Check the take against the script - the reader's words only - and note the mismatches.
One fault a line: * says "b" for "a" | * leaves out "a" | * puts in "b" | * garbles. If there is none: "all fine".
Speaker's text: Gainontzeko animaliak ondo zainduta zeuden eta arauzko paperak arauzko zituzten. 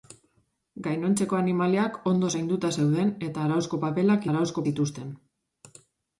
all fine